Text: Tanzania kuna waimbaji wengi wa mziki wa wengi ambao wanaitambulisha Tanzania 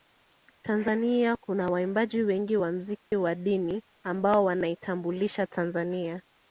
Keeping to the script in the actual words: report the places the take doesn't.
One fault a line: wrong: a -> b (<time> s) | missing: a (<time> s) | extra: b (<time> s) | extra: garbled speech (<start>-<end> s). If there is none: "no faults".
wrong: wengi -> dini (3.3 s)